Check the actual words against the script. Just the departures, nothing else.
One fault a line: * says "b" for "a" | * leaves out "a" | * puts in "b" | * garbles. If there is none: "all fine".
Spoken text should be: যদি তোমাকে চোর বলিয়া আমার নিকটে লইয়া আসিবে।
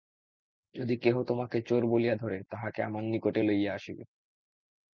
* puts in "কেহ"
* puts in "ধরে তাহাকে"